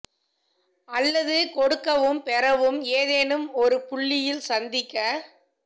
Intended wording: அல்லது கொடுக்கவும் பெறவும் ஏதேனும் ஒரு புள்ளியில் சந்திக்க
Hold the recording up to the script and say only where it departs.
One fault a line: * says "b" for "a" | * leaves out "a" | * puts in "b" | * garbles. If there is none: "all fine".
all fine